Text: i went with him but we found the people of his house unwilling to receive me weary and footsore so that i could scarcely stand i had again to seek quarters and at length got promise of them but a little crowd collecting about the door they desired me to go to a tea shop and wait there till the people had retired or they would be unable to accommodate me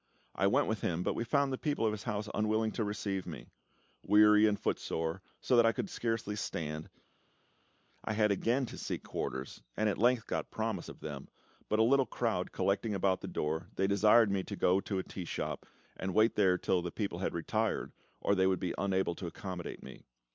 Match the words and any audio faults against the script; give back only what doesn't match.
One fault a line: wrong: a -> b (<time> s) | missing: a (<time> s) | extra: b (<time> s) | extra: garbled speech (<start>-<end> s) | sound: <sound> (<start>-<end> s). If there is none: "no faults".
no faults